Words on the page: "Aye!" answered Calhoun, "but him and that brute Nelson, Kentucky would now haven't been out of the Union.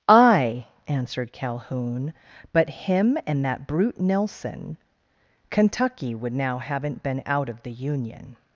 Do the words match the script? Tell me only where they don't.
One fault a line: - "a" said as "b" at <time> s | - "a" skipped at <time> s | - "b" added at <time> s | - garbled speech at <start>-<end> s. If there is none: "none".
none